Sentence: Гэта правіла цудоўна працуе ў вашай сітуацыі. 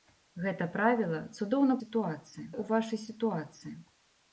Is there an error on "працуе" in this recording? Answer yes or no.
yes